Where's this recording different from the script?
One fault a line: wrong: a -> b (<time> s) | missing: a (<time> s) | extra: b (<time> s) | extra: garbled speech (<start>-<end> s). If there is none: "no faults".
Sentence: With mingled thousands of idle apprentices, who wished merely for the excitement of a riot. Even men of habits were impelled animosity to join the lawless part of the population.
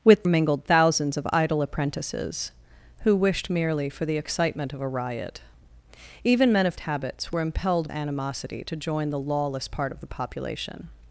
no faults